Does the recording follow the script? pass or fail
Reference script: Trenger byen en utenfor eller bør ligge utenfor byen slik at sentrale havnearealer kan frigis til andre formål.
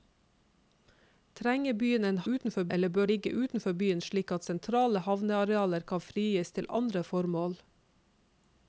pass